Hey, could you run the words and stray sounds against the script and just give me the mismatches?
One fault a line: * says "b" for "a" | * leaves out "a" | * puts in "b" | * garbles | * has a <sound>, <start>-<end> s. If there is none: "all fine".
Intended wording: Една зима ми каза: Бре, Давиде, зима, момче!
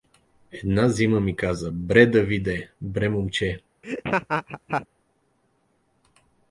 * says "бре" for "зима"
* has a laugh, 3.8-4.9 s